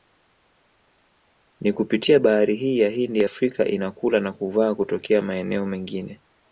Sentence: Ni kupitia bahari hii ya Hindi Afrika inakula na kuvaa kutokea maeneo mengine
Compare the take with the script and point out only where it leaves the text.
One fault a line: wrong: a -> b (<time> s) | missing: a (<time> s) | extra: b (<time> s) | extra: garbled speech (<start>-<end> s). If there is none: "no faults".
no faults